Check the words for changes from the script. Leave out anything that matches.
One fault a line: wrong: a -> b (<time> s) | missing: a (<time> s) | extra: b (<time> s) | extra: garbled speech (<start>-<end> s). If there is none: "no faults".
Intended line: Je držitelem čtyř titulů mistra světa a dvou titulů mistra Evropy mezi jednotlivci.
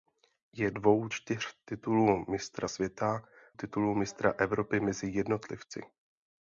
wrong: držitelem -> dvou (0.7 s)
missing: a dvou (3.2 s)